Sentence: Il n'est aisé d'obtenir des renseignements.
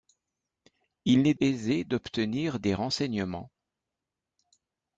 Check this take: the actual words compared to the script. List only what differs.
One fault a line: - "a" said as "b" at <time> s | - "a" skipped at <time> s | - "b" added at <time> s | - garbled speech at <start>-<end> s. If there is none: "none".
none